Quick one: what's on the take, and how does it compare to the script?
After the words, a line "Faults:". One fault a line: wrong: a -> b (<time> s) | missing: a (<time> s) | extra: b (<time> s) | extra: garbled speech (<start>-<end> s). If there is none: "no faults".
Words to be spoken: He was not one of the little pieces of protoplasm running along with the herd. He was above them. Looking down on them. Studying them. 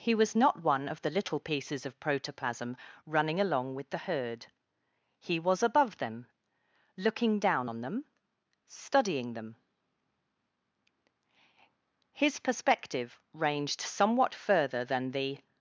He was not one of the little pieces of protoplasm running along with the herd. He was above them. Looking down on them. Studying them. His perspective ranged somewhat further than the
Faults:
extra: His perspective ranged somewhat further than the (12.1 s)